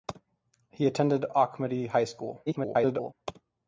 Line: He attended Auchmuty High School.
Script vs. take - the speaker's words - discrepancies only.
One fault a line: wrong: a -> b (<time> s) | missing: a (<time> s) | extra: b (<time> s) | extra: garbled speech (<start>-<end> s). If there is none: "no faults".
extra: garbled speech (2.5-3.1 s)